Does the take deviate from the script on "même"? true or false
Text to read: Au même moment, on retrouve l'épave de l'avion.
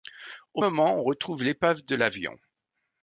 true